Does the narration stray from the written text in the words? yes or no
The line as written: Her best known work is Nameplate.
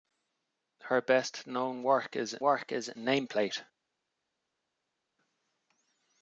yes